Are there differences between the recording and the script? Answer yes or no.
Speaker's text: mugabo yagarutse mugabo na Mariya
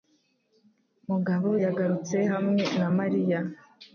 yes